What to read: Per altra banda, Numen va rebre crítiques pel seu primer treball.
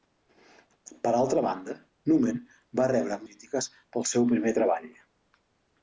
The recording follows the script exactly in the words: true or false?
true